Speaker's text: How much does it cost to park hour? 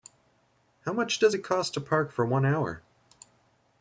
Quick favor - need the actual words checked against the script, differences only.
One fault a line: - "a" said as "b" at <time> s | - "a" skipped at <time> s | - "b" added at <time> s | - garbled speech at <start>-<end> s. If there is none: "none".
- "for one" added at 2.1 s